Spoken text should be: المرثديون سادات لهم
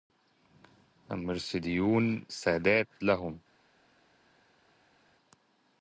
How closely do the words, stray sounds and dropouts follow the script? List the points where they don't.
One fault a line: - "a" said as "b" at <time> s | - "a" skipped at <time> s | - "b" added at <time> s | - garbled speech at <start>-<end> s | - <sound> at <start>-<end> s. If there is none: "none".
none